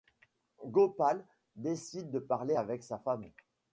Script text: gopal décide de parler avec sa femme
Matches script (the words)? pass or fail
pass